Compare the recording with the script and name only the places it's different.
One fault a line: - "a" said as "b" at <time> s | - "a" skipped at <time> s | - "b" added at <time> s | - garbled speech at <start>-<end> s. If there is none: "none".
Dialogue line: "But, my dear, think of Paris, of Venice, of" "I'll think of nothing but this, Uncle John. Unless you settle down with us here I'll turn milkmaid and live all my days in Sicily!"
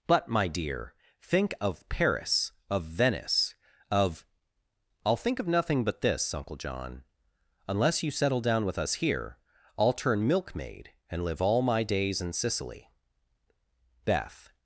- "Beth" added at 14.1 s